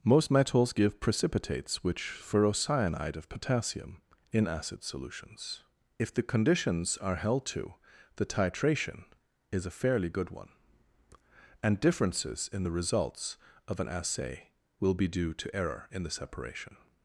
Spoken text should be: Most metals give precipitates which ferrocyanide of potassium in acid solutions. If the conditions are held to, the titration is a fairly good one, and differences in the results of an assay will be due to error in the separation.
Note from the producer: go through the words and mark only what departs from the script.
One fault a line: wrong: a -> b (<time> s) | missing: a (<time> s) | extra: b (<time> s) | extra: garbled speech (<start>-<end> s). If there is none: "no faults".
no faults